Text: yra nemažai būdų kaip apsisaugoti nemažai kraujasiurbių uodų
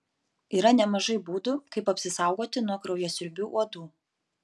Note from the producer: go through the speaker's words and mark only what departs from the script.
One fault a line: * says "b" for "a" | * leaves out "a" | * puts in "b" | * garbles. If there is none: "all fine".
* says "nuo" for "nemažai"